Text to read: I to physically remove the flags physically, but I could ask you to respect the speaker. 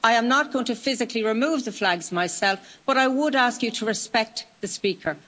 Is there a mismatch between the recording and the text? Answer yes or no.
yes